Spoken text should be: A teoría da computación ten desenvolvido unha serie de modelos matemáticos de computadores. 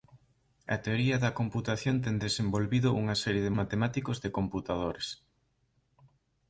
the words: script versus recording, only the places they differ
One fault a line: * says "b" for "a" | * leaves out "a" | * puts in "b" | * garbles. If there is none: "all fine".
* leaves out "modelos"